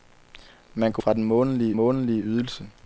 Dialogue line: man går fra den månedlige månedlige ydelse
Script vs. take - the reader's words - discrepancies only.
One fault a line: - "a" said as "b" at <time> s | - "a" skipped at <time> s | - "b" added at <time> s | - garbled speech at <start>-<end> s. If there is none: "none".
none